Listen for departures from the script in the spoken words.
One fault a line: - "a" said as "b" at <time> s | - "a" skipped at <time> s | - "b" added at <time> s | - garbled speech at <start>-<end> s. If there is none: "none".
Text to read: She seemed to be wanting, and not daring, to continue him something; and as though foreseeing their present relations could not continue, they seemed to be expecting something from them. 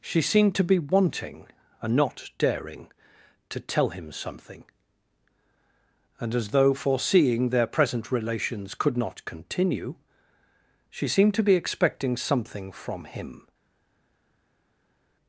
- "continue" said as "tell" at 3.6 s
- "they" said as "she" at 10.9 s
- "them" said as "him" at 13.0 s